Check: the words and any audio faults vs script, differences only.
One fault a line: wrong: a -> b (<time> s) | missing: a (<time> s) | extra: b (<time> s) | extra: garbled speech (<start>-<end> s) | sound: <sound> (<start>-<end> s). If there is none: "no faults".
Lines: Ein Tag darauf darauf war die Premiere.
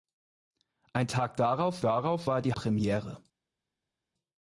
no faults